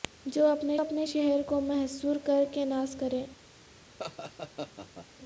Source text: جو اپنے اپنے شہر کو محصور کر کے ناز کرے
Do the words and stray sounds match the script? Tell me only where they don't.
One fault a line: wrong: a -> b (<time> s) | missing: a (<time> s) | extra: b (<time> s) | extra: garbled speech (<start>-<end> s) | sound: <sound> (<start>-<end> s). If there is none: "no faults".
sound: laugh (4.0-5.1 s)